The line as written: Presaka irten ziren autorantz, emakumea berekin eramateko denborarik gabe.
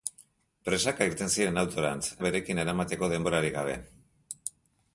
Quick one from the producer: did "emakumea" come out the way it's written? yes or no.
no